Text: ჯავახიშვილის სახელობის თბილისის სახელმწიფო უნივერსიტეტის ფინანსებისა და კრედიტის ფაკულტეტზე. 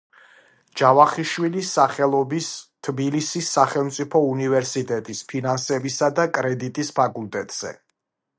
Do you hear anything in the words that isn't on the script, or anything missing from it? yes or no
no